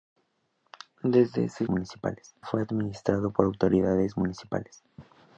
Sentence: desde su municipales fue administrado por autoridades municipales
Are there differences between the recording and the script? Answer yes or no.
no